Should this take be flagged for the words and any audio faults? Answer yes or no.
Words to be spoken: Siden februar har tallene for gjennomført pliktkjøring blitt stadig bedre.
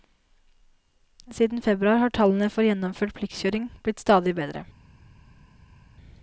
no